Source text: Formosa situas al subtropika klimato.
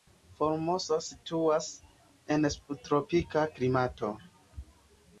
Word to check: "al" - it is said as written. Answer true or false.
false